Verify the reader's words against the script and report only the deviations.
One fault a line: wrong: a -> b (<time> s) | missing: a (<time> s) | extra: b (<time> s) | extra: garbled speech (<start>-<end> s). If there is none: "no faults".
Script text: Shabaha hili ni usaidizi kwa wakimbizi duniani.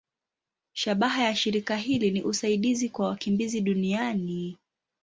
extra: ya shirika (1.2 s)